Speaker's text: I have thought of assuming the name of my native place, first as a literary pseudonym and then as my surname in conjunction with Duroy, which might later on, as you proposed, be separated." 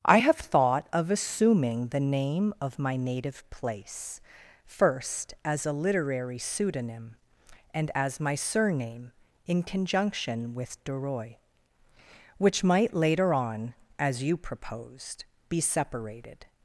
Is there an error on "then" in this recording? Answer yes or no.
yes